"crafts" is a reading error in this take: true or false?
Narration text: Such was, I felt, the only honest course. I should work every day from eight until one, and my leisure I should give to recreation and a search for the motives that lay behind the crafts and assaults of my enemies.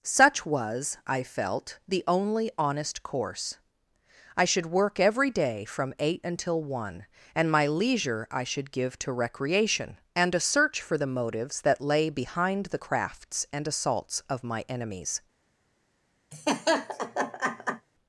false